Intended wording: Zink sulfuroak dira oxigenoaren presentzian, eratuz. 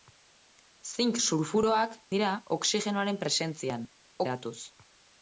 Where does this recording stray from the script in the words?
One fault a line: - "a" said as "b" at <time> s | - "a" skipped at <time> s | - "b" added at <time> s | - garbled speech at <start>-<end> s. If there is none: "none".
none